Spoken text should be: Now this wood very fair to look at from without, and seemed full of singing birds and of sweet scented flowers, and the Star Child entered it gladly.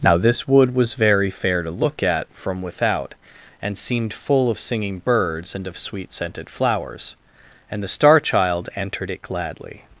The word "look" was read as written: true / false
true